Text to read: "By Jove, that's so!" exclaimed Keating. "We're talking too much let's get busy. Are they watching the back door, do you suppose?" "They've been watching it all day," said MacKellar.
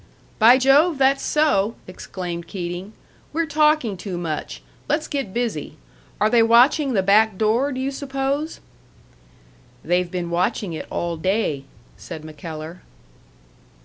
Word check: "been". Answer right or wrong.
right